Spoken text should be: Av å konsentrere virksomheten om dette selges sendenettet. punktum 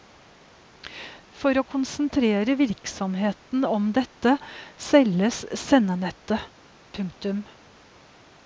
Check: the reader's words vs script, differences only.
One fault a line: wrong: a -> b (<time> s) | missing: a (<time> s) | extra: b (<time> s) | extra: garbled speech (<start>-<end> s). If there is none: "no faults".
wrong: Av -> For (1.4 s)